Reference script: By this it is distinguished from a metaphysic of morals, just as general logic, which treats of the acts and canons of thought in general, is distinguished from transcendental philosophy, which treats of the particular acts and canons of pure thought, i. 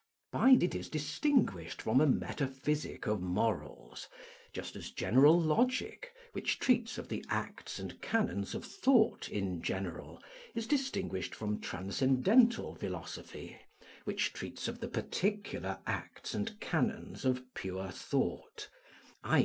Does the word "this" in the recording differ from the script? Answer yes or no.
yes